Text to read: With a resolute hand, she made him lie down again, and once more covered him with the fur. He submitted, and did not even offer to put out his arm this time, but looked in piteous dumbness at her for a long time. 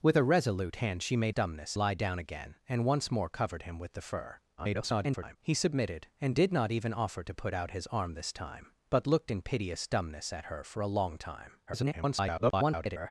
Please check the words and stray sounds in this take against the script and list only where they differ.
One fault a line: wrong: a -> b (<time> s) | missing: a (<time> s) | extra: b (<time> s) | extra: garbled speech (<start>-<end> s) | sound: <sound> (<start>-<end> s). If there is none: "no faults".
wrong: him -> dumbness (1.3 s)
extra: garbled speech (4.6-5.4 s)
extra: garbled speech (11.7-13.1 s)